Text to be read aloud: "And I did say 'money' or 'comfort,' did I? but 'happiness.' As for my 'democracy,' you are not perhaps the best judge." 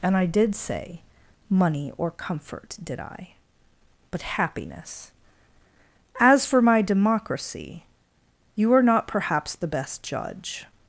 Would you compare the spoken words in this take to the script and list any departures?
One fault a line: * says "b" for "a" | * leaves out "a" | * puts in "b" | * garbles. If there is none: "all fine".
all fine